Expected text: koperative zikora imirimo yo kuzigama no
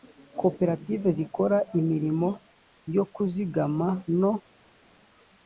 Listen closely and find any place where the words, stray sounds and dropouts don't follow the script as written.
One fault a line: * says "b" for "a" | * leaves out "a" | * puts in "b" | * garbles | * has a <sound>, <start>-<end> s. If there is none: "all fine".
all fine